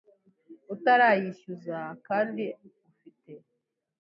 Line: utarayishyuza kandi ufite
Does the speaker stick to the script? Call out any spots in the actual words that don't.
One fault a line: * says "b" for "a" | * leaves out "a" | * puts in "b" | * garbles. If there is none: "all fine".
all fine